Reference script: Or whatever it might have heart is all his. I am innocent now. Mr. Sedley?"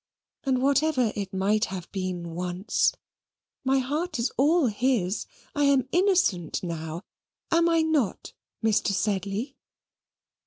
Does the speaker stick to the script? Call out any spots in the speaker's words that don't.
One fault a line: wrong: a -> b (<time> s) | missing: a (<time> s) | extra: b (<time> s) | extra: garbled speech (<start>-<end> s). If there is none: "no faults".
wrong: Or -> And (0.5 s)
extra: been once my (1.9 s)
extra: Am I not (7.5 s)